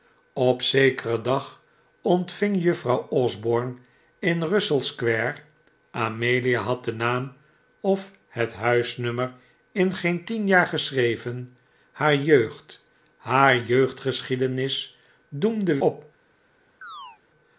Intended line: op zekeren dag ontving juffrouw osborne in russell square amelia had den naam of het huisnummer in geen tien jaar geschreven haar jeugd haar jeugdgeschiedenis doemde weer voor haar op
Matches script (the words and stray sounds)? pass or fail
fail